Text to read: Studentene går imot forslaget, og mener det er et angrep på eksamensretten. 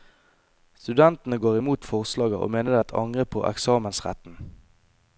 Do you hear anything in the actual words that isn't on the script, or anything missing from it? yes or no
no